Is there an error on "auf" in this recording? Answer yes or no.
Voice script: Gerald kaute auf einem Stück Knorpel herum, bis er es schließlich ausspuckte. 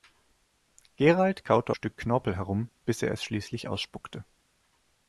yes